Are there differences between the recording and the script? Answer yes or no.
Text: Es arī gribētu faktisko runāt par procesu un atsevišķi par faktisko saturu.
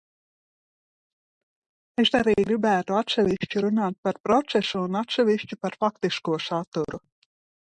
yes